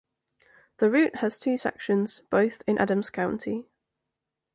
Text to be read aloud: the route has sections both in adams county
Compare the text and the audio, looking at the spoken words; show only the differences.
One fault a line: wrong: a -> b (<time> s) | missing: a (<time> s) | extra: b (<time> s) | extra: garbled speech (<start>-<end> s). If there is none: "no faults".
extra: two (1.4 s)